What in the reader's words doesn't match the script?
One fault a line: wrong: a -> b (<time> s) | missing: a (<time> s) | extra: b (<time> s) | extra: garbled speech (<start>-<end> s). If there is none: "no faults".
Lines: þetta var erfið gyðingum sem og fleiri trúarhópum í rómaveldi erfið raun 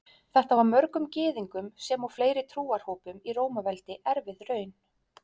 wrong: erfið -> mörgum (0.7 s)